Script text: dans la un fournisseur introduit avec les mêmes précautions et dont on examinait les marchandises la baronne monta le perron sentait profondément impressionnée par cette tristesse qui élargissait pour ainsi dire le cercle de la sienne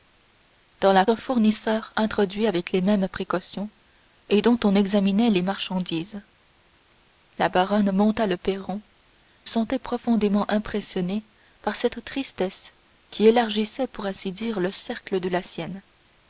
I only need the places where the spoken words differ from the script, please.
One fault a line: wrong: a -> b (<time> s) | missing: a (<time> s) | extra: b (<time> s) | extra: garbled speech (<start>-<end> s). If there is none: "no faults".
no faults